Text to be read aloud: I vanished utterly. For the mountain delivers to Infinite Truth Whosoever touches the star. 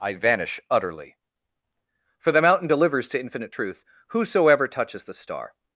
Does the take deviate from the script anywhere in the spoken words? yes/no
yes